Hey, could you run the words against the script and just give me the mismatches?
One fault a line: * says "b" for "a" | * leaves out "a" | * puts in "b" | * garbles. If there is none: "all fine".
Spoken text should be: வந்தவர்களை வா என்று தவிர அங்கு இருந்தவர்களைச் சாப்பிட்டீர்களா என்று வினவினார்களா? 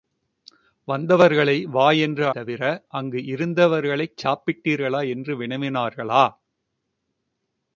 all fine